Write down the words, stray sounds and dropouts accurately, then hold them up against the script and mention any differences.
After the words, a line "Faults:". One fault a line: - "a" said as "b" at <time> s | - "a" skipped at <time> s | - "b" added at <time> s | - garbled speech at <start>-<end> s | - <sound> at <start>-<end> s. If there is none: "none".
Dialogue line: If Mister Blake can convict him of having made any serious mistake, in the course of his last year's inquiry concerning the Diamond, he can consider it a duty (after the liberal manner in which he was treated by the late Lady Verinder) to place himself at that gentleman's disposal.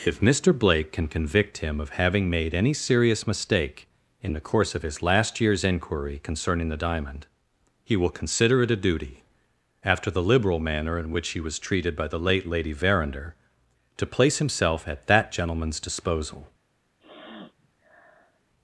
If Mister Blake can convict him of having made any serious mistake, in the course of his last year's inquiry concerning the Diamond, he will consider it a duty (after the liberal manner in which he was treated by the late Lady Verinder) to place himself at that gentleman's disposal.
Faults:
- "can" said as "will" at 8.0 s
- sniff at 17.0-18.4 s